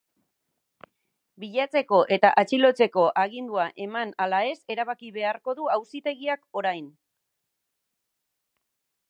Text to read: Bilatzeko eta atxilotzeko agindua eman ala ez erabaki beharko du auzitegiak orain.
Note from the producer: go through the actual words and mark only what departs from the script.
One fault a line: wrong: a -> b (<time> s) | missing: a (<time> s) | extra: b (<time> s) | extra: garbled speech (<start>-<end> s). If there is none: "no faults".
no faults